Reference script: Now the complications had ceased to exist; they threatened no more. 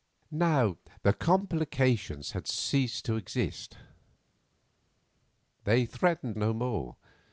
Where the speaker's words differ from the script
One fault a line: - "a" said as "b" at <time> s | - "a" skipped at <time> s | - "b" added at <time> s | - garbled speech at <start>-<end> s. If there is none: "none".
none